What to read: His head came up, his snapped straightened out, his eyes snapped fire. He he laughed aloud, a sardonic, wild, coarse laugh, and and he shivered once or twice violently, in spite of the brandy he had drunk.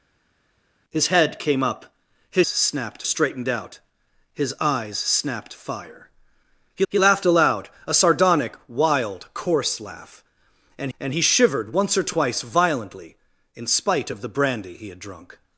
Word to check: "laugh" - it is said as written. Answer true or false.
true